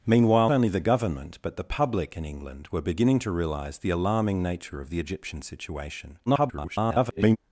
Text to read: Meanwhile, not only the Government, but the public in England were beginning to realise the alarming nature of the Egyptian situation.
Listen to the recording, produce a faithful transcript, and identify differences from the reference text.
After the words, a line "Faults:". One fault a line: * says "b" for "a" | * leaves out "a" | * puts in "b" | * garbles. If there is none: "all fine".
Meanwhile, only the Government, but the public in England were beginning to realise the alarming nature of the Egyptian situation. [garbled]
Faults:
* leaves out "not"
* garbles